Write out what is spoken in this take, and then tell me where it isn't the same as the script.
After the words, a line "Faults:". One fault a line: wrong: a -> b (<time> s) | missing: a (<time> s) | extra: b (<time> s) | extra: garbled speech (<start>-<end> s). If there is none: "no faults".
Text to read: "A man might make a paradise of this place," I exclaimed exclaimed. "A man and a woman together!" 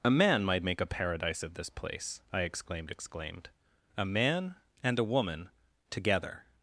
"A man might make a paradise of this place," I exclaimed exclaimed. "A man and a woman together!"
Faults:
no faults